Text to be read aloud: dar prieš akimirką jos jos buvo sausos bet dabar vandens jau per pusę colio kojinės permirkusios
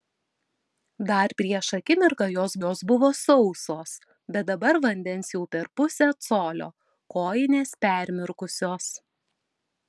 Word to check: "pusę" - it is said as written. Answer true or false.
true